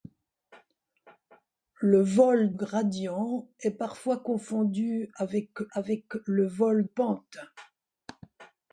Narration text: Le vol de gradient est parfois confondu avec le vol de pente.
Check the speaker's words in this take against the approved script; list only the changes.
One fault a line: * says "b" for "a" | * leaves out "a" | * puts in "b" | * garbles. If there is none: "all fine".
* leaves out "de"
* puts in "avec"
* leaves out "de"